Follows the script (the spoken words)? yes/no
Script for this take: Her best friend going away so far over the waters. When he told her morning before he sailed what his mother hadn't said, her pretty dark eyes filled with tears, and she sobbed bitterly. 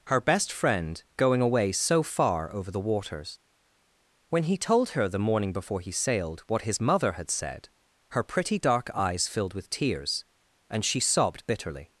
no